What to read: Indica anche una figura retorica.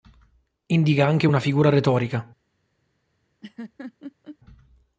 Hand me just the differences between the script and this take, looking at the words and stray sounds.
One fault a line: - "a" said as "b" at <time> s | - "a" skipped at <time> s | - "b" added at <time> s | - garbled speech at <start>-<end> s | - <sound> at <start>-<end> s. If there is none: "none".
- laugh at 3.4-4.4 s